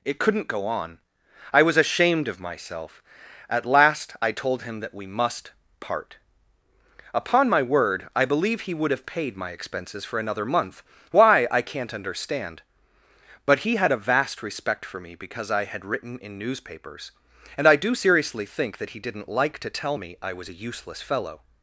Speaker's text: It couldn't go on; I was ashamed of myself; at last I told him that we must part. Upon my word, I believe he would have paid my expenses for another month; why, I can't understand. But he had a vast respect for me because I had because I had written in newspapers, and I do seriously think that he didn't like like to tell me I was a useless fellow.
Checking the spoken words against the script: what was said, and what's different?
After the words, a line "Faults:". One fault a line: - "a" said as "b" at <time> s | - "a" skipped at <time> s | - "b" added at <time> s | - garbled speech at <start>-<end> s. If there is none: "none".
It couldn't go on; I was ashamed of myself; at last I told him that we must part. Upon my word, I believe he would have paid my expenses for another month; why, I can't understand. But he had a vast respect for me because I had written in newspapers, and I do seriously think that he didn't like to tell me I was a useless fellow.
Faults:
- "because I had" skipped at 15.8 s
- "like" skipped at 19.6 s